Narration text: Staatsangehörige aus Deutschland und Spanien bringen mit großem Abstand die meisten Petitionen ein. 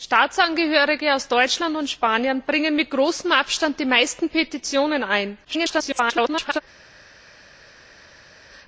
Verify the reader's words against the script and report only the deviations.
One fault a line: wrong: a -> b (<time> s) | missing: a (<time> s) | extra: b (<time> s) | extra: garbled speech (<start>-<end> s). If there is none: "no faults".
extra: garbled speech (5.4-6.6 s)